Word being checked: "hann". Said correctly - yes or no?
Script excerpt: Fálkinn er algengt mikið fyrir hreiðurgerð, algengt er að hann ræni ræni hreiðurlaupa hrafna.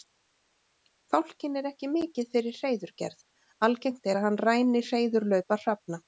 yes